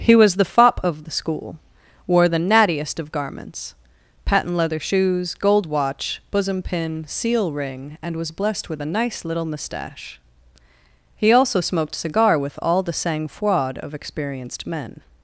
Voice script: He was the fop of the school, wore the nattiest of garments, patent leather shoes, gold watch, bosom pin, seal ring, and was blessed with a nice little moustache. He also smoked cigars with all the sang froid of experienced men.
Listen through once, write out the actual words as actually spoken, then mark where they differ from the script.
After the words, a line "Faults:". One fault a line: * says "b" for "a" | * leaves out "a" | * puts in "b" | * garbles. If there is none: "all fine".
He was the fop of the school, wore the nattiest of garments, patent leather shoes, gold watch, bosom pin, seal ring, and was blessed with a nice little moustache. He also smoked cigar with all the sang froid of experienced men.
Faults:
* says "cigar" for "cigars"